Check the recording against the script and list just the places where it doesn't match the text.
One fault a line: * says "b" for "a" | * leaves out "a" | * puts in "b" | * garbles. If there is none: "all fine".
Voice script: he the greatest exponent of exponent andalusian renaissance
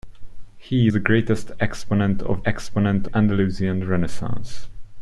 all fine